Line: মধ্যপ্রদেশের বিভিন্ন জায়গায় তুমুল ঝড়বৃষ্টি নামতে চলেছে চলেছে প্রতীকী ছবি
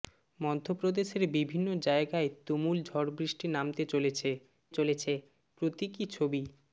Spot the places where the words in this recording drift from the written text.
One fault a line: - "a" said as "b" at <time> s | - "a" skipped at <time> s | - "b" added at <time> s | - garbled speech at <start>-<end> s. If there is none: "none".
none